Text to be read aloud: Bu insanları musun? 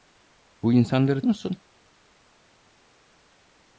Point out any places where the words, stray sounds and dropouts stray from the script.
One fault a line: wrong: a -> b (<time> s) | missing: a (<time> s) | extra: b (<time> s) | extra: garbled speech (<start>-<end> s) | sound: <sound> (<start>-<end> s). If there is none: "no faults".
no faults